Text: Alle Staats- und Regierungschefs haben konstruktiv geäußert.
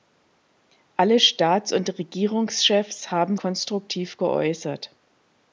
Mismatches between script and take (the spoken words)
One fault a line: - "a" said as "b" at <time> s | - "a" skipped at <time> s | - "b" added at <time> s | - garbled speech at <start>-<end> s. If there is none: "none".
none